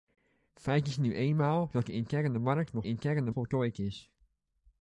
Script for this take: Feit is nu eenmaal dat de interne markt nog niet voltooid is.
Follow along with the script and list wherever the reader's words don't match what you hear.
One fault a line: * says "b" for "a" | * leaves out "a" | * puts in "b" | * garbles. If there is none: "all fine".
* says "interne" for "niet"